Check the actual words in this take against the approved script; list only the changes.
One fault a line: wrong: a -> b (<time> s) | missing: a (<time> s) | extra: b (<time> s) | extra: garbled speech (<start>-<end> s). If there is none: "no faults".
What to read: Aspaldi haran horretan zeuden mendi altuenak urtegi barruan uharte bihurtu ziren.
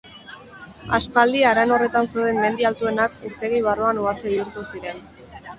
no faults